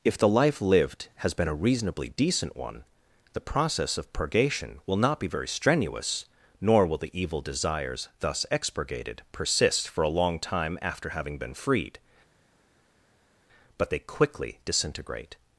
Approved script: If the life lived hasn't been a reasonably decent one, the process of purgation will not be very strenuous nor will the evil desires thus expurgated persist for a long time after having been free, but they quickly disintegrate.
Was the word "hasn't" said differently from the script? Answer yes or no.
yes